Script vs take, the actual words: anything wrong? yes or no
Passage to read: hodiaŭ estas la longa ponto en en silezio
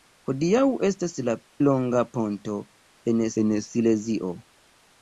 no